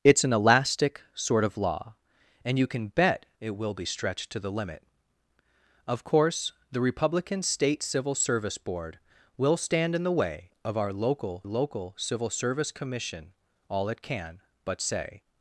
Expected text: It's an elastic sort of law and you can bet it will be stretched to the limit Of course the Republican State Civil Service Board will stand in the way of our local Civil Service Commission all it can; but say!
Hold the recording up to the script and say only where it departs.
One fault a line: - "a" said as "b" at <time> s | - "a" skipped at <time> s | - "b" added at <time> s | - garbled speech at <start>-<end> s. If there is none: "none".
- "local" added at 11.4 s